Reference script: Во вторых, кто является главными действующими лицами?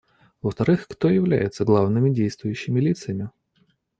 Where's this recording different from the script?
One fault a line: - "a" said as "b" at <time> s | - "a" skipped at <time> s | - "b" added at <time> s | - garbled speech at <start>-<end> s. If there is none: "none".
none